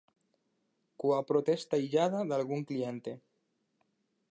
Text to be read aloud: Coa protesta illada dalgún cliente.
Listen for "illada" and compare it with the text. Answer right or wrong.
right